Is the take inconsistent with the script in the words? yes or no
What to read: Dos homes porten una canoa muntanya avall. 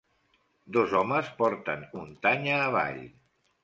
yes